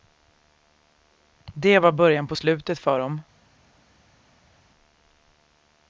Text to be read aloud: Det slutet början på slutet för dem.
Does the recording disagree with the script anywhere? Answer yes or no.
yes